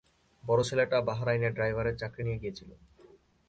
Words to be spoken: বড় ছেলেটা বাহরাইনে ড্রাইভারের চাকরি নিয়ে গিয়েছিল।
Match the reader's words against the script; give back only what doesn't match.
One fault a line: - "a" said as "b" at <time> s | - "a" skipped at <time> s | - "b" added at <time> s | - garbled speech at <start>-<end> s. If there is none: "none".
none